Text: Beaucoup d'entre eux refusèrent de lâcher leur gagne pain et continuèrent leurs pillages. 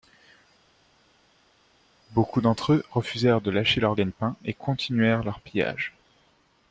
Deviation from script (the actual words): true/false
false